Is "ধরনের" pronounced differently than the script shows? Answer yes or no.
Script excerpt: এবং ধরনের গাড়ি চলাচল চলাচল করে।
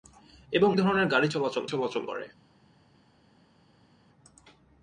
no